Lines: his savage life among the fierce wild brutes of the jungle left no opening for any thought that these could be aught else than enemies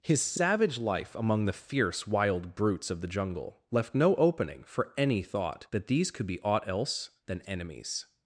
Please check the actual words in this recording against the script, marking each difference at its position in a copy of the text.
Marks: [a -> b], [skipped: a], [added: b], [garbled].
his savage life among the fierce wild brutes of the jungle left no opening for any thought that these could be aught else than enemies